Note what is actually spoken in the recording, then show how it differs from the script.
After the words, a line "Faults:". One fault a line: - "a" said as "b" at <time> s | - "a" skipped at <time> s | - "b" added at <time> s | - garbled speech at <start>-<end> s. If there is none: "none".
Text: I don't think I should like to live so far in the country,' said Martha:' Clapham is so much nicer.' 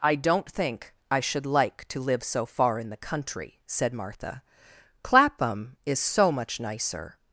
I don't think I should like to live so far in the country,' said Martha:' Clapham is so much nicer.'
Faults:
none